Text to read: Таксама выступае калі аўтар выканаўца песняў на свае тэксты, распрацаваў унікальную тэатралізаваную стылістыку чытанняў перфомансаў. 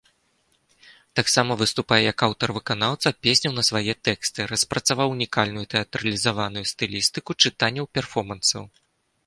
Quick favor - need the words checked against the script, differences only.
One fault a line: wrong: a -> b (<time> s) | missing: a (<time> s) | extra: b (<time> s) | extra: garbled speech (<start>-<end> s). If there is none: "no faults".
wrong: калі -> як (2.1 s)